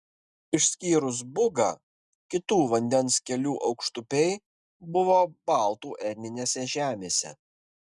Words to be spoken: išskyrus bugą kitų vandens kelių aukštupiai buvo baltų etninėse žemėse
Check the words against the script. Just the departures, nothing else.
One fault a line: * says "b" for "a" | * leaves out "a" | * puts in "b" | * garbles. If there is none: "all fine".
all fine